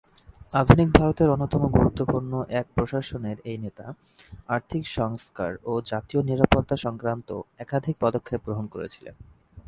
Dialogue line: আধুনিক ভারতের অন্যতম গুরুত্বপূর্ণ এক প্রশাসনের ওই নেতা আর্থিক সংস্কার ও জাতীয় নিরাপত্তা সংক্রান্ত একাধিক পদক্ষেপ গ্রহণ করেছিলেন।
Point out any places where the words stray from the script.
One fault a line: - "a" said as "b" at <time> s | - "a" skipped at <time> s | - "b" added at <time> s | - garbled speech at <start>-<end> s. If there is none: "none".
- "ওই" said as "এই" at 3.4 s